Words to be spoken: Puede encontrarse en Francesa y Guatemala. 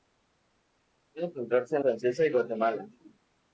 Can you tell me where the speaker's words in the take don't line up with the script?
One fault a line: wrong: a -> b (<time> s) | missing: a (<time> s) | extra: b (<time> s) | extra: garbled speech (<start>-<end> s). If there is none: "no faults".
no faults